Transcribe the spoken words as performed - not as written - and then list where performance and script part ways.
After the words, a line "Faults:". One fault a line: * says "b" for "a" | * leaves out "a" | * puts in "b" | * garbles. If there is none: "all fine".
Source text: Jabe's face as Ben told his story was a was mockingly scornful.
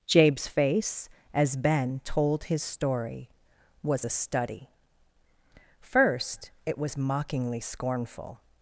Jabe's face as Ben told his story was a study. First it was mockingly scornful.
Faults:
* puts in "study First it"